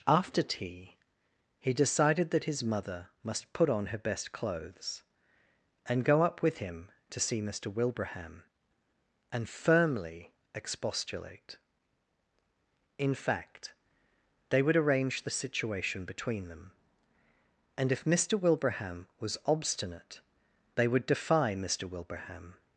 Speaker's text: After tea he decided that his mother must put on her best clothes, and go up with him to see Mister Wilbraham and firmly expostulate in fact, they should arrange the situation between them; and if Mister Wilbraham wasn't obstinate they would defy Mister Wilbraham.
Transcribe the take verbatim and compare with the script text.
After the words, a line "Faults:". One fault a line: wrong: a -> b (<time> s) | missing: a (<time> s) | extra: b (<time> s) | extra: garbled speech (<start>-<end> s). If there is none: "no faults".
After tea he decided that his mother must put on her best clothes, and go up with him to see Mister Wilbraham and firmly expostulate in fact, they would arrange the situation between them; and if Mister Wilbraham was obstinate they would defy Mister Wilbraham.
Faults:
wrong: should -> would (14.6 s)
wrong: wasn't -> was (19.2 s)